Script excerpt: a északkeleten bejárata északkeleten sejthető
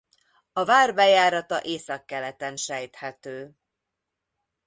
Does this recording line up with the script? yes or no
no